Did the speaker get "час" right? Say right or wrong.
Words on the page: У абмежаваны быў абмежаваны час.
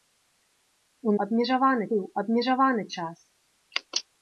right